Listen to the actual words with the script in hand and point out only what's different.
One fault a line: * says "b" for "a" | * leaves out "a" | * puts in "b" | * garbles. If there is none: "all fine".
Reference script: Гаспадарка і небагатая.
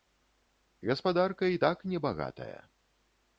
* puts in "так"